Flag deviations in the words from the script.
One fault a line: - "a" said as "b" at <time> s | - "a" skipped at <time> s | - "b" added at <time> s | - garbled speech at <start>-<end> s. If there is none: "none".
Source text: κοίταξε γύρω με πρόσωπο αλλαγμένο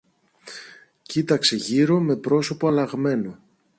none